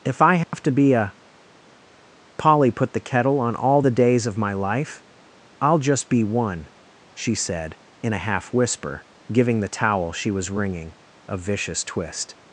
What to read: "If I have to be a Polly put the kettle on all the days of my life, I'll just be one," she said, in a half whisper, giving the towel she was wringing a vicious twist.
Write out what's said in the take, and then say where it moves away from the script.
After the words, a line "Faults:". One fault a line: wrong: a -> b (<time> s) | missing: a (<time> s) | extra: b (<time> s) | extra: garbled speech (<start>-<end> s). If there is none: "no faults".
"If I have to be a Polly put the kettle on all the days of my life, I'll just be one," she said, in a half whisper, giving the towel she was wringing a vicious twist.
Faults:
no faults